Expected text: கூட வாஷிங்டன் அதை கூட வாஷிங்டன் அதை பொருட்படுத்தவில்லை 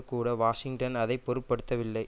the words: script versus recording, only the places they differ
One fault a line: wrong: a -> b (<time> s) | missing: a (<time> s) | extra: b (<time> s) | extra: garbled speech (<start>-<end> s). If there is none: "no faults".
missing: கூட வாஷிங்டன் அதை (1.2 s)